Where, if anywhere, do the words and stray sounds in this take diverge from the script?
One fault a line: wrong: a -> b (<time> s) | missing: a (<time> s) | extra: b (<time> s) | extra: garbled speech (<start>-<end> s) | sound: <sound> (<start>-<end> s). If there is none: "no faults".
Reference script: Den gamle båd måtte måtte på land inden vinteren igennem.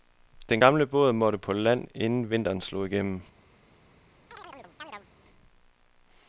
missing: måtte (1.4 s)
extra: slog (2.6 s)
sound: chirp (4.3-5.1 s)